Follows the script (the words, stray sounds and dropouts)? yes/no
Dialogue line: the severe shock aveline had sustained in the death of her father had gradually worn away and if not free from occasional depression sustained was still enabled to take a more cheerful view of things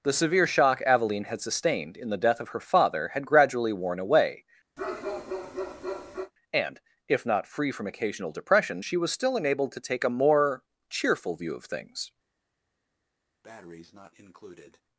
no